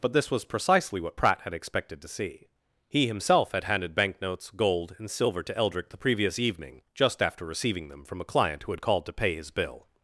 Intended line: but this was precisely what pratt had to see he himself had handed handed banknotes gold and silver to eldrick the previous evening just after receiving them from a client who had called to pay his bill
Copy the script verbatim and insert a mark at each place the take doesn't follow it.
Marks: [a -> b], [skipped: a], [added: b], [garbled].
but this was precisely what pratt had [added: expected] to see he himself had handed [skipped: handed] banknotes gold and silver to eldrick the previous evening just after receiving them from a client who had called to pay his bill